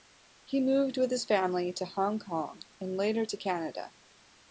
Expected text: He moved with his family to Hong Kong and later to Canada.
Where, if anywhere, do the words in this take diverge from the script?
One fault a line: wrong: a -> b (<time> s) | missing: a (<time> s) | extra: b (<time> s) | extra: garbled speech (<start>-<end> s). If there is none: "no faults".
no faults